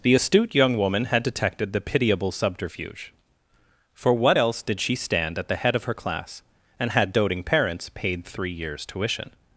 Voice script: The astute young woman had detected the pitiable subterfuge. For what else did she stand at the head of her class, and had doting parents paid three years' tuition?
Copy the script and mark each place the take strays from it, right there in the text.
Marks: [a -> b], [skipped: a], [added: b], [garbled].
The astute young woman had detected the pitiable subterfuge. For what else did she stand at the head of her class, and had doting parents paid three years' tuition?